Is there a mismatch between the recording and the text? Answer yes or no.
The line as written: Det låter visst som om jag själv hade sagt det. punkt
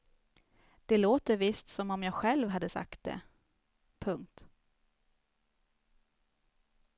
no